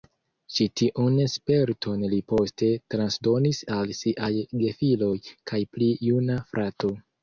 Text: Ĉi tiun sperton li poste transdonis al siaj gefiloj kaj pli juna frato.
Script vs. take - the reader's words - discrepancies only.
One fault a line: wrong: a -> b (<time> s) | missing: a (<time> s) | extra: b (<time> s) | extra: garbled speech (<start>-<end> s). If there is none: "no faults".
no faults